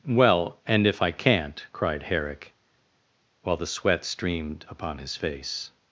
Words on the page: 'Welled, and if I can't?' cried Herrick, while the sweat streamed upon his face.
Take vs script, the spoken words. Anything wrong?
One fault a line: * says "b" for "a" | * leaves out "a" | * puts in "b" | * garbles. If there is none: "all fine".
* says "Well" for "Welled"